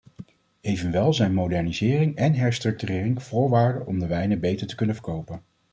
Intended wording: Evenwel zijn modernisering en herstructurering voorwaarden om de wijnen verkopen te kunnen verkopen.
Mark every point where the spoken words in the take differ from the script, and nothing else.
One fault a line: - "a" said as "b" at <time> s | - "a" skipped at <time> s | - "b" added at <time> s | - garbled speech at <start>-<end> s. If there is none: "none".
- "verkopen" said as "beter" at 4.4 s